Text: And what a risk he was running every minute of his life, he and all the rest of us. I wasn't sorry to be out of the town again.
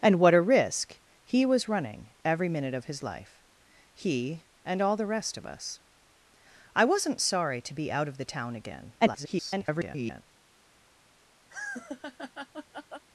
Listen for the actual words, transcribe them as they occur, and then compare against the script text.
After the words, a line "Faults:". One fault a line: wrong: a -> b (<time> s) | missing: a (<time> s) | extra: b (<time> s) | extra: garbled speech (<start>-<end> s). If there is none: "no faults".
And what a risk he was running every minute of his life, he and all the rest of us. I wasn't sorry to be out of the town again. [garbled]
Faults:
extra: garbled speech (9.0-10.2 s)